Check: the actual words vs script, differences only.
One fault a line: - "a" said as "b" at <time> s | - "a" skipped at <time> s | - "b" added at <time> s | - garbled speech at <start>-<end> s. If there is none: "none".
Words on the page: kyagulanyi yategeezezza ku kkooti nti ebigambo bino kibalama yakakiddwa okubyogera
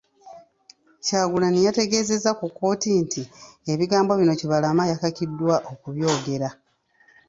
none